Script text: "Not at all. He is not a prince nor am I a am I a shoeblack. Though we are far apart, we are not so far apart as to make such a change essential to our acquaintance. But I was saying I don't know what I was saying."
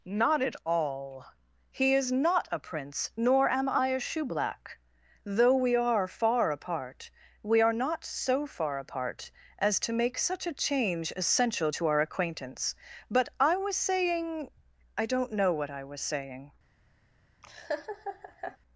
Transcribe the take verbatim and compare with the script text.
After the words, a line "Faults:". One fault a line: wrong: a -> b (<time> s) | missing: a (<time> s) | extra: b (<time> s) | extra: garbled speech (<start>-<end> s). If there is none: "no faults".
"Not at all. He is not a prince nor am I a shoeblack. Though we are far apart, we are not so far apart as to make such a change essential to our acquaintance. But I was saying I don't know what I was saying."
Faults:
missing: am I a (4.0 s)